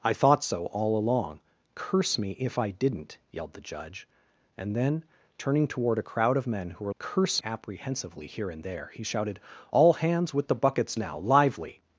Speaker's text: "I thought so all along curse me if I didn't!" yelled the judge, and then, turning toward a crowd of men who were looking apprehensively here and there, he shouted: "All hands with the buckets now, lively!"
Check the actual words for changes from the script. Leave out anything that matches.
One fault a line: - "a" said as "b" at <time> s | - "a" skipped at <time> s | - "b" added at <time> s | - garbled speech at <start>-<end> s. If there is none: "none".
- "looking" said as "curse" at 7.0 s